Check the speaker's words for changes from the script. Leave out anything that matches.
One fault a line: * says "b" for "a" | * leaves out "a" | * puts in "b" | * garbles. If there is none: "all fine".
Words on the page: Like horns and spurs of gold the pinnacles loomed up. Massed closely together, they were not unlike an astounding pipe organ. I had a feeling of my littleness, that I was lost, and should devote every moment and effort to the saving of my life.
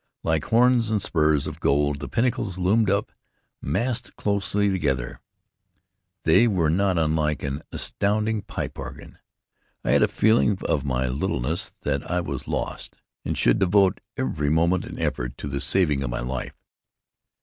all fine